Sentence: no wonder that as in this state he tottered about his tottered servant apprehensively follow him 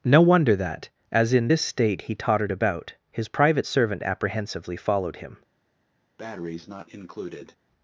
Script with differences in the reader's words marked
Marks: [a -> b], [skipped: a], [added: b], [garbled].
no wonder that as in this state he tottered about his [tottered -> private] servant apprehensively [follow -> followed] him